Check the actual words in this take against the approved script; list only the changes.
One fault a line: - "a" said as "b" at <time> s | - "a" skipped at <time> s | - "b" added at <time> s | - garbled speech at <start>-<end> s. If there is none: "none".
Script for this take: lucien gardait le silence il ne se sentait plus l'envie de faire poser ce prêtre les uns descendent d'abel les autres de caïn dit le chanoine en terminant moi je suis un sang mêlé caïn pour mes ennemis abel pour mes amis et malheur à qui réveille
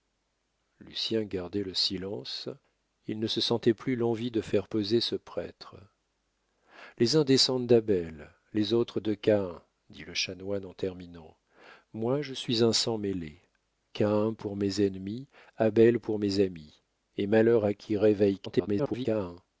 - garbled speech at 18.5-19.1 s